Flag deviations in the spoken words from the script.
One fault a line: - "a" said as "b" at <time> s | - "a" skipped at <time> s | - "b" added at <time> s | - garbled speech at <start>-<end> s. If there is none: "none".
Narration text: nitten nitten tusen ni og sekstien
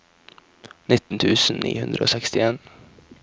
- "nitten" skipped at 1.2 s
- "hundre" added at 1.8 s